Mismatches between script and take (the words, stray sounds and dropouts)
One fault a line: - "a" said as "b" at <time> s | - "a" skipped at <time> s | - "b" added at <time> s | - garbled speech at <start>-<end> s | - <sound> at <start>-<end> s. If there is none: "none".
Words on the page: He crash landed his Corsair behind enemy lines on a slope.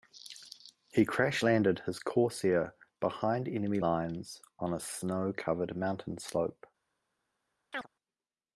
- "snow covered mountain" added at 4.8 s
- chirp at 7.7-7.9 s